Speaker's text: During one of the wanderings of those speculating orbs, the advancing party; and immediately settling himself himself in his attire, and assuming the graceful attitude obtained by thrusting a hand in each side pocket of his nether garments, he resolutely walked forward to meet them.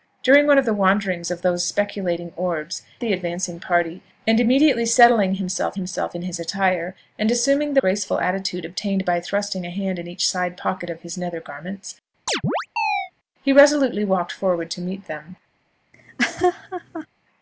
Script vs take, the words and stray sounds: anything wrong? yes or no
yes